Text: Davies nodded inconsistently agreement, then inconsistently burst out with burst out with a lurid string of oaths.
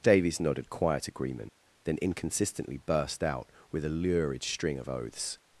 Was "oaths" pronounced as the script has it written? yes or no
yes